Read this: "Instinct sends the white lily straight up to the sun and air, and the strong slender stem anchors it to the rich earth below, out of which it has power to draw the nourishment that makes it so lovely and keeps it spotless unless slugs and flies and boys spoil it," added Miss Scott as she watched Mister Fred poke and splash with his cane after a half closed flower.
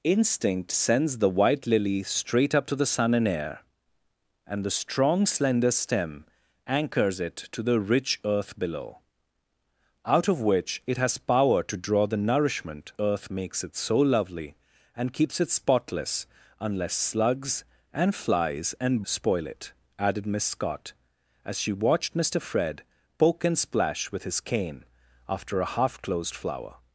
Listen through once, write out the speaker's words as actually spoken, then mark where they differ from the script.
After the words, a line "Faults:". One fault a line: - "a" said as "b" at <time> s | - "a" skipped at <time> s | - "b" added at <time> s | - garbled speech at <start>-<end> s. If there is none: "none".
"Instinct sends the white lily straight up to the sun and air, and the strong slender stem anchors it to the rich earth below, out of which it has power to draw the nourishment earth makes it so lovely and keeps it spotless unless slugs and flies and spoil it," added Miss Scott as she watched Mister Fred poke and splash with his cane after a half closed flower.
Faults:
- "that" said as "earth" at 13.0 s
- "boys" skipped at 19.0 s